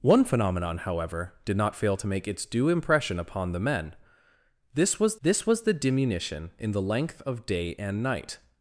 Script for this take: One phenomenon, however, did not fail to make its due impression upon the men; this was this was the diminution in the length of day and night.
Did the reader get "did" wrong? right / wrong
right